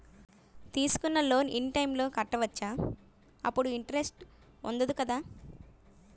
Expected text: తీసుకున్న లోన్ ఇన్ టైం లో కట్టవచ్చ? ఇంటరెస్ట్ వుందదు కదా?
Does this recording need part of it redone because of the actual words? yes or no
yes